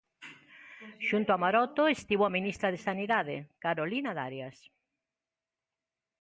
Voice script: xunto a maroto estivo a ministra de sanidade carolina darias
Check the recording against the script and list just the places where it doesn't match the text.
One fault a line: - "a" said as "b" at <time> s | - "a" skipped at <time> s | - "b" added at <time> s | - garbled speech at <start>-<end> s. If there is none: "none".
none